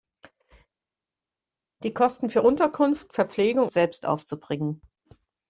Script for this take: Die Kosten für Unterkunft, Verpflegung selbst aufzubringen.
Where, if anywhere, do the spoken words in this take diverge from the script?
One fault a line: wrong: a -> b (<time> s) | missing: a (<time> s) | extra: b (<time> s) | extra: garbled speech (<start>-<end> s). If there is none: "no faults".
no faults